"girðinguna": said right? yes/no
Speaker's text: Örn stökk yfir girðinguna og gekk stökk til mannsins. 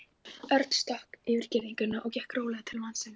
yes